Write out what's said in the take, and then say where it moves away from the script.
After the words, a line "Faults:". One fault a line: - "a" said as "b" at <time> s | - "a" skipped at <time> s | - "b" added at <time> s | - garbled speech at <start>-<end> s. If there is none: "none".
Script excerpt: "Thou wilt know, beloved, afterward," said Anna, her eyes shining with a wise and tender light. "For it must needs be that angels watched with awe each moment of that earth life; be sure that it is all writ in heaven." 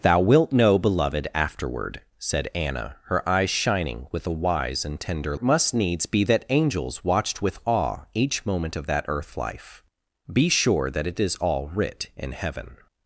"Thou wilt know, beloved, afterward," said Anna, her eyes shining with a wise and tender it must needs be that angels watched with awe each moment of that earth life; be sure that it is all writ in heaven."
Faults:
- "light For" skipped at 5.4 s